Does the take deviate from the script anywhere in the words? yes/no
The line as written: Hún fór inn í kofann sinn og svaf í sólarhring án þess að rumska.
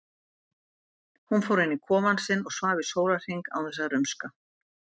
no